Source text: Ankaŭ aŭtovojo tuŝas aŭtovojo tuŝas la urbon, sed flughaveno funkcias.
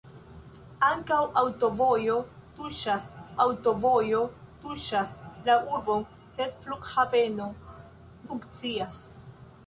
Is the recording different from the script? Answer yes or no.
no